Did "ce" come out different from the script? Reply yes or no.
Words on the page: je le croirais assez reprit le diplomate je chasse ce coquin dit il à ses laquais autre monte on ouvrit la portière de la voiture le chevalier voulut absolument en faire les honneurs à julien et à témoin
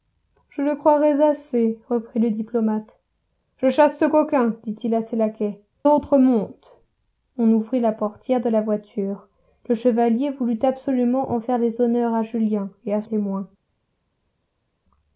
no